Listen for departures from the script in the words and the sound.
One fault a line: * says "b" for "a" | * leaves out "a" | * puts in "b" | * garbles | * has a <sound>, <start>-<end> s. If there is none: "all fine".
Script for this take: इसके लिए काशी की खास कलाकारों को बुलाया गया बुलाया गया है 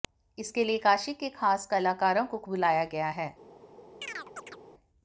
* says "के" for "की"
* leaves out "बुलाया गया"
* has a chirp, 4.0-4.6 s